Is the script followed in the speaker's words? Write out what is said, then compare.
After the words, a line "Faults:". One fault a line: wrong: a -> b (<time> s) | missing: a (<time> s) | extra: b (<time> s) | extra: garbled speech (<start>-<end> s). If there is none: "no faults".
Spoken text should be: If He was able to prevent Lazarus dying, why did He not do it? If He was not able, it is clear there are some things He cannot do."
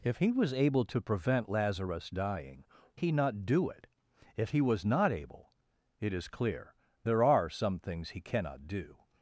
If He was able to prevent Lazarus dying, He not do it? If He was not able, it is clear there are some things He cannot do."
Faults:
missing: why did (2.6 s)